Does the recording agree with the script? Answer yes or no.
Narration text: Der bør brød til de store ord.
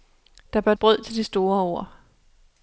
yes